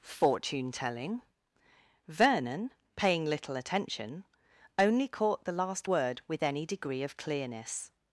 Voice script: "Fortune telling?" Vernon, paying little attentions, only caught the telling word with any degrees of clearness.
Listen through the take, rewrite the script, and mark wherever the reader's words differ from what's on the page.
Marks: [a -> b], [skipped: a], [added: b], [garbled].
"Fortune telling?" Vernon, paying little [attentions, -> attention] only caught the [telling -> last] word with any [degrees -> degree] of clearness.